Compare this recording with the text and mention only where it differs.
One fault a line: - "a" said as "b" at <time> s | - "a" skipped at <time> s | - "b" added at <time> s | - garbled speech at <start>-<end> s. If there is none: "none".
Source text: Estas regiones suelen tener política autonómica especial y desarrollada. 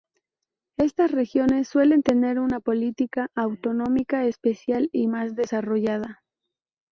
- "una" added at 2.4 s
- "más" added at 5.1 s